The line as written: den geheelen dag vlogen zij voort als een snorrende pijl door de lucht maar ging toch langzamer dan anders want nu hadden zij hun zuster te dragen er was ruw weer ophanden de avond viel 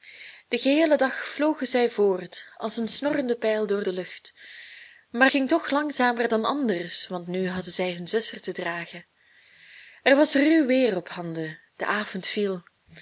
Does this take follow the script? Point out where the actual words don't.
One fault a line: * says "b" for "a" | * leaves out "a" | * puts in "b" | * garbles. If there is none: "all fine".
all fine